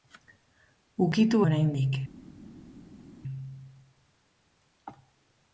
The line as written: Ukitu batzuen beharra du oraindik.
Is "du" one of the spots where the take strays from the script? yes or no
yes